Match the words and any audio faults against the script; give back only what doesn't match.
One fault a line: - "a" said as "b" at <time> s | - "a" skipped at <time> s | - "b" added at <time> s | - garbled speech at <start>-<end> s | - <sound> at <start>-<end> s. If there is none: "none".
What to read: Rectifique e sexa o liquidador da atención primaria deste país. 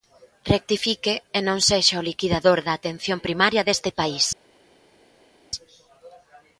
- "non" added at 1.5 s